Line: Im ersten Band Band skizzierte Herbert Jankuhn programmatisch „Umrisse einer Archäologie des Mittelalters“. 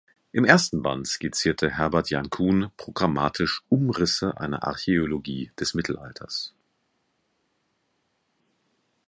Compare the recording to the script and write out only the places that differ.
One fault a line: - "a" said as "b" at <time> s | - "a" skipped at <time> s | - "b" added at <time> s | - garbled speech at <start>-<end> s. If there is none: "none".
- "Band" skipped at 1.1 s